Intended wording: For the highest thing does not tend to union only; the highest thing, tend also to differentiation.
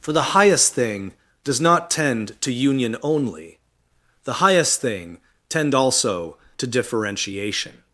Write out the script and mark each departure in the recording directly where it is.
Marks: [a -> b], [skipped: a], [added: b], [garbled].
For the highest thing does not tend to union only; the highest thing, tend also to differentiation.